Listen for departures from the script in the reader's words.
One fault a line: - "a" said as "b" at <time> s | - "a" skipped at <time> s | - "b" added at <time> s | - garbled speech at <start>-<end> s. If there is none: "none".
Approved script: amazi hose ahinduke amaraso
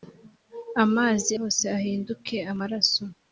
none